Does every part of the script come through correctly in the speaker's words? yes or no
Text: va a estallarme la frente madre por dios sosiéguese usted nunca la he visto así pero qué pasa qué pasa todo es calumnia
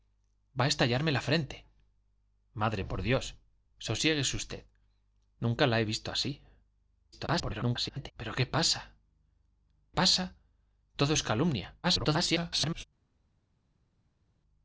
no